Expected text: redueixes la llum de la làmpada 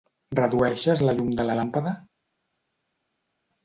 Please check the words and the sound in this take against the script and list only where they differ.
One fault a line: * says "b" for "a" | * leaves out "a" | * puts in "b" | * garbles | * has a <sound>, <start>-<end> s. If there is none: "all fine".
all fine